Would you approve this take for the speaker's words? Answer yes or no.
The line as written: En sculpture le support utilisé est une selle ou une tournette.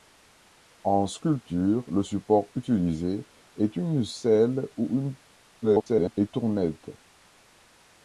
no